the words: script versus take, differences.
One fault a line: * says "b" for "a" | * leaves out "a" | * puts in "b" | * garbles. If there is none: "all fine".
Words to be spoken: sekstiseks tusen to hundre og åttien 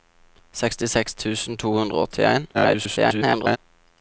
* garbles